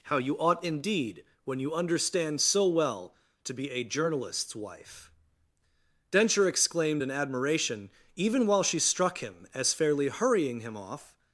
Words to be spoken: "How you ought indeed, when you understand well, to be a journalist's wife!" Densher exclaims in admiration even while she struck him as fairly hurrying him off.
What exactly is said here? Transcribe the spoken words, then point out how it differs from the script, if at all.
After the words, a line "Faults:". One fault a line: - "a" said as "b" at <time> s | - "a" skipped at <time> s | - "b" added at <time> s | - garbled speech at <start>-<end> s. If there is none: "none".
"How you ought indeed, when you understand so well, to be a journalist's wife!" Densher exclaimed in admiration even while she struck him as fairly hurrying him off.
Faults:
- "so" added at 2.4 s
- "exclaims" said as "exclaimed" at 6.5 s